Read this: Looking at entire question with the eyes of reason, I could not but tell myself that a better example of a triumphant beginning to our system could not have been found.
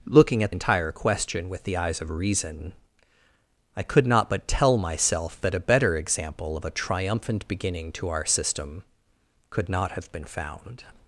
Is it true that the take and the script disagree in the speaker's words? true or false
false